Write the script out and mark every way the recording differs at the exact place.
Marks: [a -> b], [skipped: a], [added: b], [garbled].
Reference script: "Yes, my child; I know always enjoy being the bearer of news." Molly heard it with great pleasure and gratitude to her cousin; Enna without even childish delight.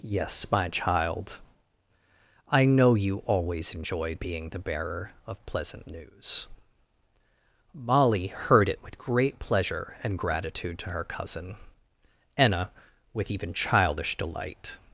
"Yes, my child; I know [added: you] always enjoy being the bearer of [added: pleasant] news." Molly heard it with great pleasure and gratitude to her cousin; Enna [without -> with] even childish delight.